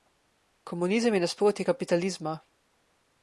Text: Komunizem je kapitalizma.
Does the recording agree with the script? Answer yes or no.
no